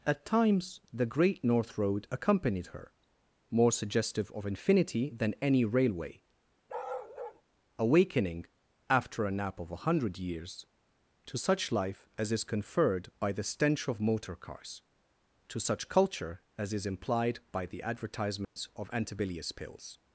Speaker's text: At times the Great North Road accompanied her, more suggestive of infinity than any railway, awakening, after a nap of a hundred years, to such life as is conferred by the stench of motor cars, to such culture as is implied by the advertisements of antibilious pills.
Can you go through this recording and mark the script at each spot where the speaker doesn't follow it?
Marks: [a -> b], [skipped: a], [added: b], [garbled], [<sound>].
At times the Great North Road accompanied her, more suggestive of infinity than any railway, [bark] awakening, after a nap of a hundred years, to such life as is conferred by the stench of motor cars, to such culture as is implied by the advertisements [dropout] of antibilious pills.